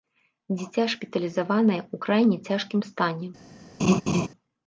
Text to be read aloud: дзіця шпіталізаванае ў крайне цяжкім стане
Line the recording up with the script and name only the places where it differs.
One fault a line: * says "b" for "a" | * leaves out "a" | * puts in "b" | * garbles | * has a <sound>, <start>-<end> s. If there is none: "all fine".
* has a laugh, 3.8-4.3 s